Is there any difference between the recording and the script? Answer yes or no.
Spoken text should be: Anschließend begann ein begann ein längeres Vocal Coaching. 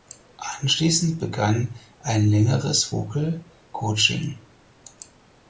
yes